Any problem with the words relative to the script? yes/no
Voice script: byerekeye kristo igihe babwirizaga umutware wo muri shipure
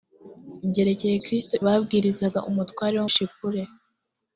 yes